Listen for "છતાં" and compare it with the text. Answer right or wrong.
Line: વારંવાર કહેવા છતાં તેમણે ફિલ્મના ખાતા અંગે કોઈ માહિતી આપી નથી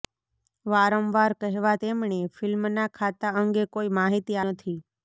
wrong